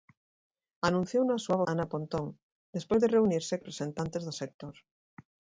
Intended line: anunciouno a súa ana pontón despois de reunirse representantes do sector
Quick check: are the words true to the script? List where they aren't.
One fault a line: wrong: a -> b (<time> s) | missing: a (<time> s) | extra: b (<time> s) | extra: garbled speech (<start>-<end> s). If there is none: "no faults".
no faults